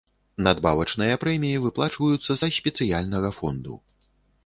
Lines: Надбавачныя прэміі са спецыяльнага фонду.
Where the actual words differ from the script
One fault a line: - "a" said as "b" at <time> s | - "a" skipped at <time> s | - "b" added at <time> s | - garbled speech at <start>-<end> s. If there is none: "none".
- "выплачваюцца" added at 1.7 s